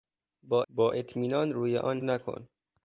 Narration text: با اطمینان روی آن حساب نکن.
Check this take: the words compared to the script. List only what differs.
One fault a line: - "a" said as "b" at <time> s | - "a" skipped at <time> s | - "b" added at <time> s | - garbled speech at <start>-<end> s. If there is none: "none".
- "با" added at 0.7 s
- "حساب" skipped at 2.0 s